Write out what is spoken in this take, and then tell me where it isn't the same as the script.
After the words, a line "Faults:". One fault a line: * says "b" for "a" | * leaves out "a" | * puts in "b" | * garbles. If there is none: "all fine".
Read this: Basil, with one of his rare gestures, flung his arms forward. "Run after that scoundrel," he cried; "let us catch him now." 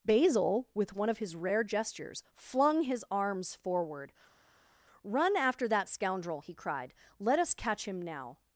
Basil, with one of his rare gestures, flung his arms forward. "Run after that scoundrel," he cried; "let us catch him now."
Faults:
all fine